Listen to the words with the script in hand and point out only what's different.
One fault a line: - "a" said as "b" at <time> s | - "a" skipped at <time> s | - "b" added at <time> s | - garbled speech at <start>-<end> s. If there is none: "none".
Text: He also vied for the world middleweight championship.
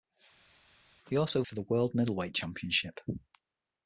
- "vied" skipped at 1.4 s